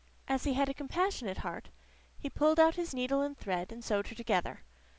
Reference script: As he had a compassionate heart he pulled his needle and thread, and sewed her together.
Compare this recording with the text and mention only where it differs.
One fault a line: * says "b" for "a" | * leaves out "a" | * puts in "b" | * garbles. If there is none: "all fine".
* puts in "out"